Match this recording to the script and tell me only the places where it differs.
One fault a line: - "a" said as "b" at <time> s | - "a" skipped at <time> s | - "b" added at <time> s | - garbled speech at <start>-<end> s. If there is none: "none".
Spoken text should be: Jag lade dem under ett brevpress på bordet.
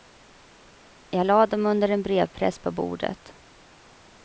- "ett" said as "en" at 1.9 s